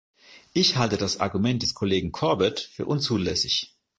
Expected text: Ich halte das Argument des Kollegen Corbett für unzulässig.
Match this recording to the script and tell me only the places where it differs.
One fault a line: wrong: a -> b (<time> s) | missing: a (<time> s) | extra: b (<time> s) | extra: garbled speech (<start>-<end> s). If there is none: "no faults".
no faults